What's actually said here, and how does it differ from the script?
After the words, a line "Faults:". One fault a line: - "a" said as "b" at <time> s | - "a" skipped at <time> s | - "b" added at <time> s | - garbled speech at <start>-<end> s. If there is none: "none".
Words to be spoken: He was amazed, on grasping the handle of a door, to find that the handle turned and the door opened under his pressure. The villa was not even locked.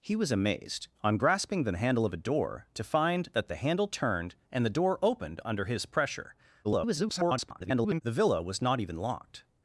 He was amazed, on grasping the handle of a door, to find that the handle turned and the door opened under his pressure. [garbled] The villa was not even locked.
Faults:
- garbled speech at 6.6-8.0 s